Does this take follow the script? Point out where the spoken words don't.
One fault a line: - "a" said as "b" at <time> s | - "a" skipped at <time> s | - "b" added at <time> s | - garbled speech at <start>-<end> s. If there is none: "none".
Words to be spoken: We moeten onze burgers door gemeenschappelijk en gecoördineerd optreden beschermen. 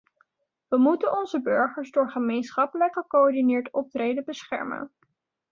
- "en" skipped at 2.9 s